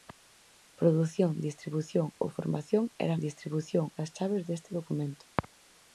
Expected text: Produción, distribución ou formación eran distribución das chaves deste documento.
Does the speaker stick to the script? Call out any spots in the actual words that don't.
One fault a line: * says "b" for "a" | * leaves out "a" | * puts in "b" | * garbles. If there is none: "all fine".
all fine